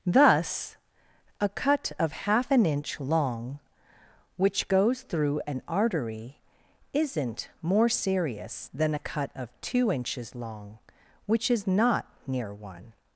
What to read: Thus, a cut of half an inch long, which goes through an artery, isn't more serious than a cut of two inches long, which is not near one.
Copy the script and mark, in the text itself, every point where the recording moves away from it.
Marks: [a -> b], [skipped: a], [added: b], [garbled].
Thus, a cut of half an inch long, which goes through an artery, isn't more serious than a cut of two inches long, which is not near one.